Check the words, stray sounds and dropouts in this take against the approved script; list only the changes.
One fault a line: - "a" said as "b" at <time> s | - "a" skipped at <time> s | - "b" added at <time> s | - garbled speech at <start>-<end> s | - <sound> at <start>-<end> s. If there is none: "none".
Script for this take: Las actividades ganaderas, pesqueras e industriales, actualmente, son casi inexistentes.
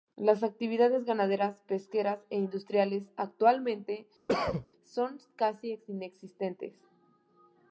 - cough at 4.3-4.7 s